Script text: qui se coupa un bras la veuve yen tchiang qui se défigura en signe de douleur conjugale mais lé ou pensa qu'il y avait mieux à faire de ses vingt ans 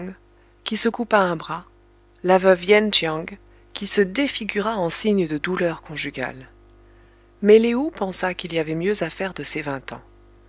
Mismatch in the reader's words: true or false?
false